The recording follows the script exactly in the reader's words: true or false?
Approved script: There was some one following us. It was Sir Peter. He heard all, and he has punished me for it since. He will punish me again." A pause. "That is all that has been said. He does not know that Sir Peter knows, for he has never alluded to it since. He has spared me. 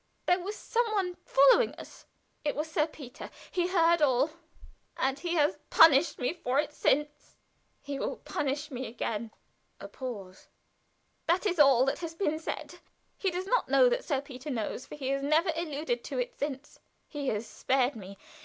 true